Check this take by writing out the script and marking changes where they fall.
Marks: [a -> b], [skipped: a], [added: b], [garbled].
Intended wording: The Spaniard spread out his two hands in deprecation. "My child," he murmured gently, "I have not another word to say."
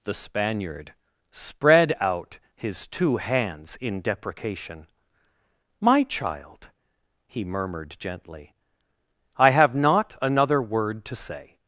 The Spaniard spread out his two hands in deprecation. "My child," he murmured gently, "I have not another word to say."